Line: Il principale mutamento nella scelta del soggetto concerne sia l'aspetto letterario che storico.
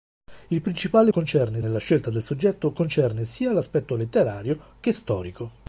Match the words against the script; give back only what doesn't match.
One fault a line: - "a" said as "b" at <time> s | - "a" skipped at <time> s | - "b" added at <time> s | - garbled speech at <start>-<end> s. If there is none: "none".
- "mutamento" said as "concerne" at 1.1 s